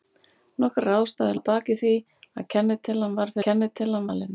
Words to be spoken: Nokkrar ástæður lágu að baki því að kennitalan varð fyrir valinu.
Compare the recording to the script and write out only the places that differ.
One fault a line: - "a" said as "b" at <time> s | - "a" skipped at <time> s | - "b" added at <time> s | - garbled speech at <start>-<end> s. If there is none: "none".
- "lágu" skipped at 1.4 s
- "fyrir" said as "kennitalan" at 3.5 s